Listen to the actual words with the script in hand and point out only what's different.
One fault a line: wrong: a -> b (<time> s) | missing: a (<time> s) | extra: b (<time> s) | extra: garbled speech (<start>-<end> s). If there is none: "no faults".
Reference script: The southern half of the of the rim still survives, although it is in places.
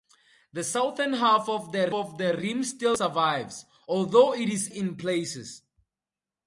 no faults